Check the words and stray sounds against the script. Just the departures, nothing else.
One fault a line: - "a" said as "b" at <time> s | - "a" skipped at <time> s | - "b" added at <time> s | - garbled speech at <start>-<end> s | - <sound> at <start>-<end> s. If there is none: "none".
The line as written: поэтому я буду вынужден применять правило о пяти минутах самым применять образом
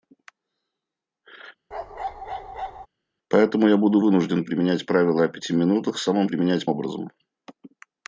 - bark at 1.7-2.9 s